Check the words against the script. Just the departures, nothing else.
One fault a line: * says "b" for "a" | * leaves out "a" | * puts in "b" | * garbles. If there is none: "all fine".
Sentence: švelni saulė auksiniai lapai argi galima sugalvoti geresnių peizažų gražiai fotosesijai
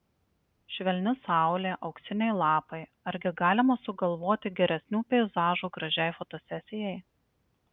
all fine